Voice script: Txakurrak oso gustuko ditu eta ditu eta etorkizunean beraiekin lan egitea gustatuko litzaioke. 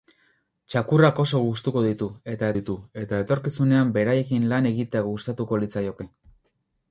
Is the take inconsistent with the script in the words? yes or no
no